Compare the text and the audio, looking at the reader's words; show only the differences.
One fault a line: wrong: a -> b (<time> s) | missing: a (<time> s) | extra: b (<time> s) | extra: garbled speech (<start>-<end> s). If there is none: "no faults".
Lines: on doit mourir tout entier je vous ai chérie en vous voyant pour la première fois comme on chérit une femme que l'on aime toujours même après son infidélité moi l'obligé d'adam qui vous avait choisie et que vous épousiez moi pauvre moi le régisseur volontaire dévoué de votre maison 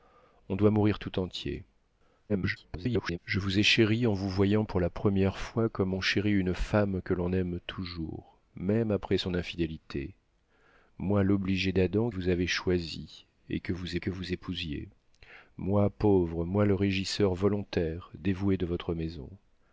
extra: garbled speech (2.3-3.2 s)
missing: qui (12.1 s)
extra: que vous (14.0 s)